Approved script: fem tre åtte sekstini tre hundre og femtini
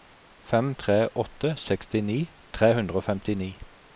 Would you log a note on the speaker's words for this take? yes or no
no